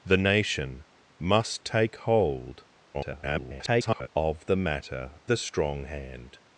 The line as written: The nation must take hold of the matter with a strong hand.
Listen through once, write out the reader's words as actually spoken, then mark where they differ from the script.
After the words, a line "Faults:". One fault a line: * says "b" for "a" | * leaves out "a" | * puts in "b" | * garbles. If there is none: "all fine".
The nation must take hold [garbled] of the matter a strong hand.
Faults:
* garbles
* leaves out "with"